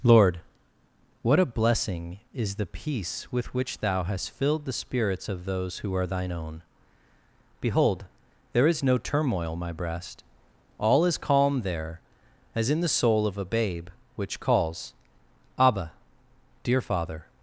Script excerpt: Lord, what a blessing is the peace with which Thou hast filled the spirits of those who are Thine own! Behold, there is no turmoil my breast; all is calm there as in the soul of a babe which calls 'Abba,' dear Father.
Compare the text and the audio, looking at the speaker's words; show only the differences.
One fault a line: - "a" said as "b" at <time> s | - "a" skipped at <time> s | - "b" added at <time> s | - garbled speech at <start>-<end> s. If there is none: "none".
none